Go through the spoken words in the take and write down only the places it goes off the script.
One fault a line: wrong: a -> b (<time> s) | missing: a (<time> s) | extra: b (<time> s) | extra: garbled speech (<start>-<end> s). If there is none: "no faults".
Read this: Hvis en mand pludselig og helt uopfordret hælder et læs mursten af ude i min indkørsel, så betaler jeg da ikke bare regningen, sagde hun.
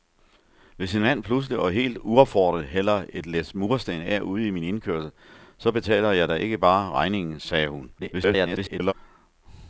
extra: garbled speech (8.0-8.9 s)